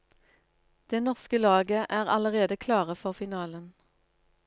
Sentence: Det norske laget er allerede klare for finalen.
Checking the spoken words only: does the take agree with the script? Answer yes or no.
yes